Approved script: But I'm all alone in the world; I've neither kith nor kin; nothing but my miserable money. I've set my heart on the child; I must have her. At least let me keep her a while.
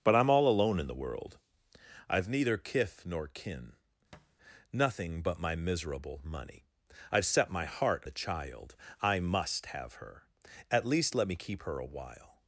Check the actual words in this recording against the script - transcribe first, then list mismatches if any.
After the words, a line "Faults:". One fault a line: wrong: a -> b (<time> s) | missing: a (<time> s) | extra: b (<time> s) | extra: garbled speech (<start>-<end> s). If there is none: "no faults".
But I'm all alone in the world; I've neither kith nor kin; nothing but my miserable money. I've set my heart the child; I must have her. At least let me keep her a while.
Faults:
missing: on (8.0 s)